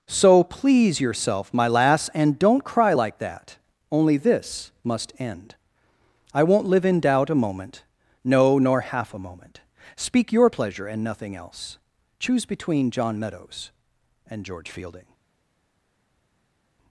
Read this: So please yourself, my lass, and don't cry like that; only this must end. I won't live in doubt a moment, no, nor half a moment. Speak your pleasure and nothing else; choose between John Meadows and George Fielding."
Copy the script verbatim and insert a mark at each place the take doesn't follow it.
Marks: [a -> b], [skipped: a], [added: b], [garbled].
So please yourself, my lass, and don't cry like that; only this must end. I won't live in doubt a moment, no, nor half a moment. Speak your pleasure and nothing else; choose between John Meadows and George Fielding."